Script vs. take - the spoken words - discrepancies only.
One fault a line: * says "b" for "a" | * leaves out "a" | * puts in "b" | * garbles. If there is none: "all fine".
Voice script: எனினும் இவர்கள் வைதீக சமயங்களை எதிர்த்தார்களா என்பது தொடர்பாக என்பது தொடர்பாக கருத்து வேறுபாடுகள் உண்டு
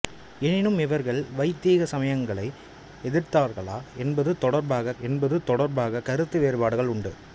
all fine